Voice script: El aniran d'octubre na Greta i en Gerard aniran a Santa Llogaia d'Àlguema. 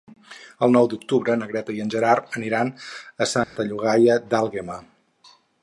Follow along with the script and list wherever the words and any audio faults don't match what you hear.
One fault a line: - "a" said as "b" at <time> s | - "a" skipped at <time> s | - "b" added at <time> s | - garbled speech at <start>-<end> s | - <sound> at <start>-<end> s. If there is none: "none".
- "aniran" said as "nou" at 0.8 s
- dropout at 3.4-3.6 s